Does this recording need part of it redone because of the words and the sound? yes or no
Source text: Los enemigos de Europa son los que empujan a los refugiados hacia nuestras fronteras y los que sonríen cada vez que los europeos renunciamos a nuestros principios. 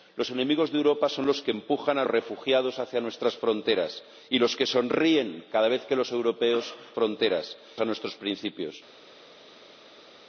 yes